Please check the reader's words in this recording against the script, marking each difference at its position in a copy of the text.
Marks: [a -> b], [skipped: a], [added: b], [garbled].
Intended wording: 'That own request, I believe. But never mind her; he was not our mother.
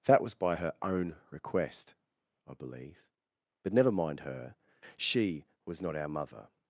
'That [added: was by her] own request, I believe. But never mind her; [he -> she] was not our mother.